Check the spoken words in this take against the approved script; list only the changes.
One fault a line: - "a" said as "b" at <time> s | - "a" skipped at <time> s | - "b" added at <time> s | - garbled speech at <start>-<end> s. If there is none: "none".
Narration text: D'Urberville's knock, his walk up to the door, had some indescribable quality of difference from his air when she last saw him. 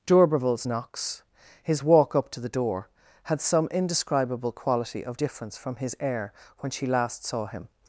- "knock" said as "knocks" at 0.7 s